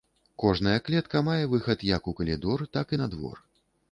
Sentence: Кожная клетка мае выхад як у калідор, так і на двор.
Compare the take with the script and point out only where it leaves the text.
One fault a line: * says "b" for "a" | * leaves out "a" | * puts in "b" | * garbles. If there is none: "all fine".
all fine